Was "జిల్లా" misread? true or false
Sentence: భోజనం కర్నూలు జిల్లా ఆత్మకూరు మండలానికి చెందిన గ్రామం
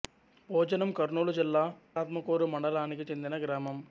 false